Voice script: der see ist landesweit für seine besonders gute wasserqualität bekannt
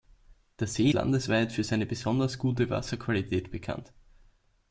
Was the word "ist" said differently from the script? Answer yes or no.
yes